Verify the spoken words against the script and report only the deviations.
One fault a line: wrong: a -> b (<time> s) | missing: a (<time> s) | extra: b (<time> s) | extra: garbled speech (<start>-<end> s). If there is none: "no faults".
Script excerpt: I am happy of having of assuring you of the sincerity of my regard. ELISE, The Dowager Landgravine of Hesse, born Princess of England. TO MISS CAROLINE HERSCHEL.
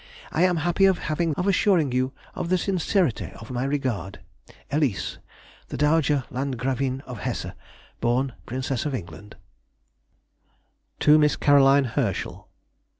no faults